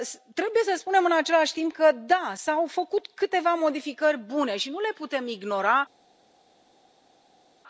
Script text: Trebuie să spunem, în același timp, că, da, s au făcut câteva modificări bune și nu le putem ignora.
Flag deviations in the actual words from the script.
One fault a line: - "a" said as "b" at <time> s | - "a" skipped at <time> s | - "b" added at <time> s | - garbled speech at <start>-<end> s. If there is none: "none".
none